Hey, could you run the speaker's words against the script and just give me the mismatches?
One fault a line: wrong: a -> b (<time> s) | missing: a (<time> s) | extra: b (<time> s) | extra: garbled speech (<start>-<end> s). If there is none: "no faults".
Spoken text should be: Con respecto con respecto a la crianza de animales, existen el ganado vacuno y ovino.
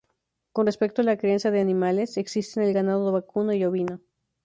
missing: con respecto (1.0 s)